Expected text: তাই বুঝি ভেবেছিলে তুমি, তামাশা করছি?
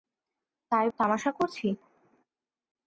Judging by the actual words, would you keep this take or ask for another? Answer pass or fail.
fail